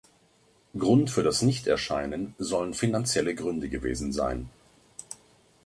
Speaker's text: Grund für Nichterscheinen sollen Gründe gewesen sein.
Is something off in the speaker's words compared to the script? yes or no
yes